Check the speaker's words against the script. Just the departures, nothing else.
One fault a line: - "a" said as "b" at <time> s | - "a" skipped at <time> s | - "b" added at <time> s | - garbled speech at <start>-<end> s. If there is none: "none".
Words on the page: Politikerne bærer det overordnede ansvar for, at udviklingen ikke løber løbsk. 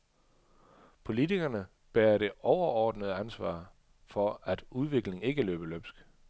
none